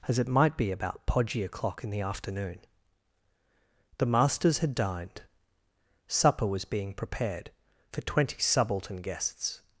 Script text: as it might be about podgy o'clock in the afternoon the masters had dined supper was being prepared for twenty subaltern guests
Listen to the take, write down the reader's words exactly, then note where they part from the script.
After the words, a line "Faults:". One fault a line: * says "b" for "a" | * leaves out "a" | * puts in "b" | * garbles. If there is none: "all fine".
as it might be about podgy o'clock in the afternoon the masters had dined supper was being prepared for twenty subaltern guests
Faults:
all fine